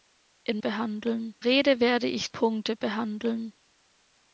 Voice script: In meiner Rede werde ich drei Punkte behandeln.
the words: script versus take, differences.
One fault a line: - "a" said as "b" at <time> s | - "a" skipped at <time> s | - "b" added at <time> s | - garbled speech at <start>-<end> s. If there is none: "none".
- "meiner" said as "behandeln" at 0.6 s
- "drei" skipped at 2.3 s